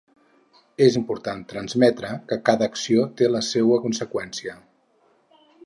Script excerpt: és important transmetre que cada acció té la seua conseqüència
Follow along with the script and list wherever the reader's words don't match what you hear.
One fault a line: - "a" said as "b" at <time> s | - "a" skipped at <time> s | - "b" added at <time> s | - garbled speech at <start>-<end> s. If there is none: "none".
none